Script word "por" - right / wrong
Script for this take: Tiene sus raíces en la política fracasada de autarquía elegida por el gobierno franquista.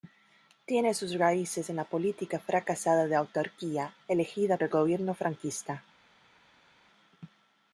wrong